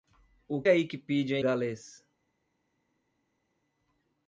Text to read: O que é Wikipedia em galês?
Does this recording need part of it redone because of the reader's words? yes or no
yes